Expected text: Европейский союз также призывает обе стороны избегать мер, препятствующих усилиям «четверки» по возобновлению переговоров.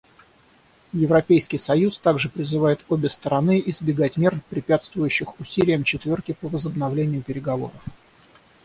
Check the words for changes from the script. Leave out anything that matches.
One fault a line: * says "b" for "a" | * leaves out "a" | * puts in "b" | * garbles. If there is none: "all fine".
all fine